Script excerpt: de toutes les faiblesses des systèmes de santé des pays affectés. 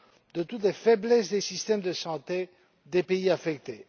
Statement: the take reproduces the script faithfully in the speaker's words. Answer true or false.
true